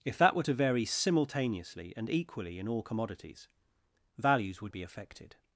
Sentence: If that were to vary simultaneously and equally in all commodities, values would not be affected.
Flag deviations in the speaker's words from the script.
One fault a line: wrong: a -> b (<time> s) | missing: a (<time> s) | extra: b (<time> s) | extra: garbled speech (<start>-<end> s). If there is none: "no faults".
missing: not (4.7 s)